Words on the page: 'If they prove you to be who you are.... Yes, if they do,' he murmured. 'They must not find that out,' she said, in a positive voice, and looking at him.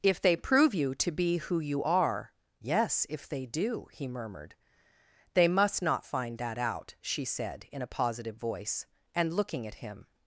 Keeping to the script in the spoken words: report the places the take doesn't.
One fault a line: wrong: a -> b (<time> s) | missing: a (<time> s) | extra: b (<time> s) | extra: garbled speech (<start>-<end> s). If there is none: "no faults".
no faults